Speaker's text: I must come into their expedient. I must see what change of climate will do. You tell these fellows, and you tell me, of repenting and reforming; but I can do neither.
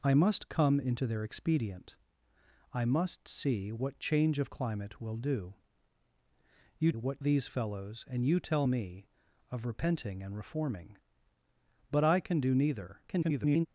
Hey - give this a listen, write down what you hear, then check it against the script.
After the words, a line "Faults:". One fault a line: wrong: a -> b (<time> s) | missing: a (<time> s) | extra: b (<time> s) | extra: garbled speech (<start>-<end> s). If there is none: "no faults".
I must come into their expedient. I must see what change of climate will do. You what these fellows, and you tell me, of repenting and reforming; but I can do neither. [garbled]
Faults:
wrong: tell -> what (6.9 s)
extra: garbled speech (13.1-13.7 s)